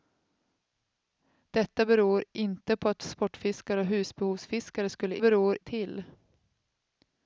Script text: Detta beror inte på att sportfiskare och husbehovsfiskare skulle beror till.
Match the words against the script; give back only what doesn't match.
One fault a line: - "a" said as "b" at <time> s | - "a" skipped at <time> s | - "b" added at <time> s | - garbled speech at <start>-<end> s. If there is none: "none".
none